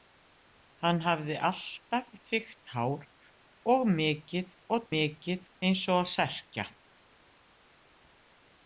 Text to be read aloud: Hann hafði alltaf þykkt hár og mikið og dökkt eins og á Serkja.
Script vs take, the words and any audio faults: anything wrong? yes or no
yes